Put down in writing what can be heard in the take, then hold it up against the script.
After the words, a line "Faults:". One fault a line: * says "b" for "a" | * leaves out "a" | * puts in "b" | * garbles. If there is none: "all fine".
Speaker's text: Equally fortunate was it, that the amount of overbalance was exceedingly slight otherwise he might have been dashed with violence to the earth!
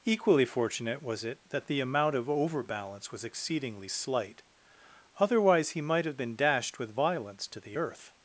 Equally fortunate was it, that the amount of overbalance was exceedingly slight otherwise he might have been dashed with violence to the earth!
Faults:
all fine